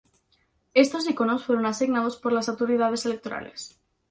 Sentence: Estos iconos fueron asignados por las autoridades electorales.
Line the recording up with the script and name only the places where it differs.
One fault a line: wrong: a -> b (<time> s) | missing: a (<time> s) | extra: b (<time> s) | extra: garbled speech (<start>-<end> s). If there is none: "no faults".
no faults